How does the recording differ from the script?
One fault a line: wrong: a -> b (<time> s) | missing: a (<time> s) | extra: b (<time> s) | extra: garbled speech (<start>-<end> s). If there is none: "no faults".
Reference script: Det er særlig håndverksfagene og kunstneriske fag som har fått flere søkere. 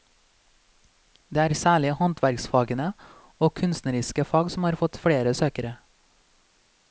no faults